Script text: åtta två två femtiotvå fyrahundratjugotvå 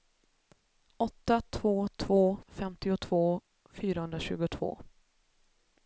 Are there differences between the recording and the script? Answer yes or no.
no